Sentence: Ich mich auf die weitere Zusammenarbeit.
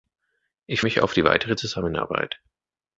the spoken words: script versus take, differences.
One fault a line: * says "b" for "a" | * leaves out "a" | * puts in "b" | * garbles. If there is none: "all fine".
all fine